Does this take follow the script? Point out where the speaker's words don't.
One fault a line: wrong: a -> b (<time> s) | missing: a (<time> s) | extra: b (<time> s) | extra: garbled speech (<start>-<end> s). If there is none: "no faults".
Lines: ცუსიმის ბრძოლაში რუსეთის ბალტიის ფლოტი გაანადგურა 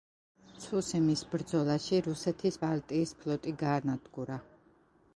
no faults